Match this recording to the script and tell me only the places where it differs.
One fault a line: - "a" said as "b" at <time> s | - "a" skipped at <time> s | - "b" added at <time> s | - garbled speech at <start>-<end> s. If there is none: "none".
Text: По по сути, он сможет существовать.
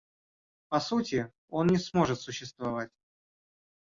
- "по" skipped at 0.8 s
- "не" added at 1.7 s